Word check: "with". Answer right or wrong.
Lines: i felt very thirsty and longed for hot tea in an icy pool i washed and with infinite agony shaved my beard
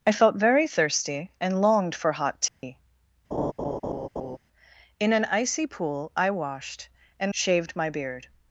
wrong